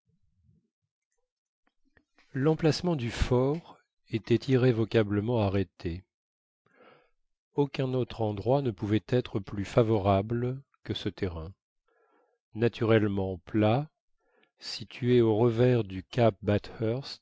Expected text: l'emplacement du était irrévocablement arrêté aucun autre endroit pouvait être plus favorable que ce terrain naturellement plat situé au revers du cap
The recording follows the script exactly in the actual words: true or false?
false